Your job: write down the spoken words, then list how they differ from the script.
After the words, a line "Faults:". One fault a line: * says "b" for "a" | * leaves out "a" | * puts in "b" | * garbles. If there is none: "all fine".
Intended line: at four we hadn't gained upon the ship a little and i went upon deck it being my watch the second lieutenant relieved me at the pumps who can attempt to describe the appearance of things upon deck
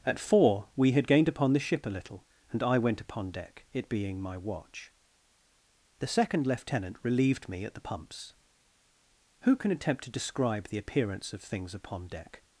at four we had gained upon the ship a little and i went upon deck it being my watch the second lieutenant relieved me at the pumps who can attempt to describe the appearance of things upon deck
Faults:
* says "had" for "hadn't"